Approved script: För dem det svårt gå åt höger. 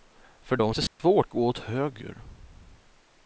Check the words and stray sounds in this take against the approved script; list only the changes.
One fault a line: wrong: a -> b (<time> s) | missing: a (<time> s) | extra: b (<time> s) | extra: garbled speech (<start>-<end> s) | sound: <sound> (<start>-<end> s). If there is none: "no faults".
sound: dropout (0.9-1.0 s)